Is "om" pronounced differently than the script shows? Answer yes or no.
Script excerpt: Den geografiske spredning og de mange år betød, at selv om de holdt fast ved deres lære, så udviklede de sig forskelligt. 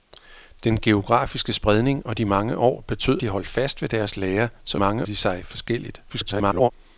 yes